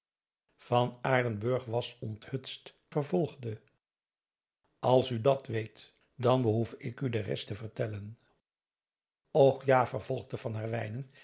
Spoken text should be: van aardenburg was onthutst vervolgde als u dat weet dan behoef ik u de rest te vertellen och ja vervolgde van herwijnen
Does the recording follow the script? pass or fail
pass